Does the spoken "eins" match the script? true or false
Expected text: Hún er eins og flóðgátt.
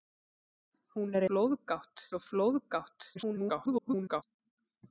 false